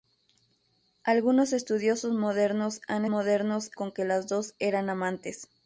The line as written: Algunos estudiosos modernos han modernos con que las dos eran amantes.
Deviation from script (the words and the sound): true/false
false